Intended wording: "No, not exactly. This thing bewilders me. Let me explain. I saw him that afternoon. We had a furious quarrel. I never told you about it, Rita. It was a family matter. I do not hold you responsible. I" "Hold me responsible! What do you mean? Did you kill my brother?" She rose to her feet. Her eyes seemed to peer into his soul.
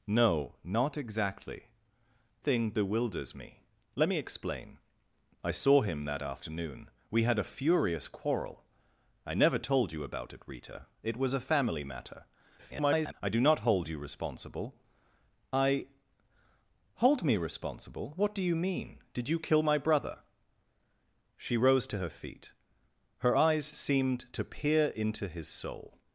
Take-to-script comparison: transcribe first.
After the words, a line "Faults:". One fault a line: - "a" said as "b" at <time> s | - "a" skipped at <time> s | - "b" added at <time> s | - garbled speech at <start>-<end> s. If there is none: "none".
"No, not exactly. Thing bewilders me. Let me explain. I saw him that afternoon. We had a furious quarrel. I never told you about it, Rita. It was a family matter. [garbled] I do not hold you responsible. I" "Hold me responsible! What do you mean? Did you kill my brother?" She rose to her feet. Her eyes seemed to peer into his soul.
Faults:
- "This" skipped at 1.6 s
- garbled speech at 12.6-13.1 s